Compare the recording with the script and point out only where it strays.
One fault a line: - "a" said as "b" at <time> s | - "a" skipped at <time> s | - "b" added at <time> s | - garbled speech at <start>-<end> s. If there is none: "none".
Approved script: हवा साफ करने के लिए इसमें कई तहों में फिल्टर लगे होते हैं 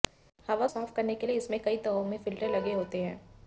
none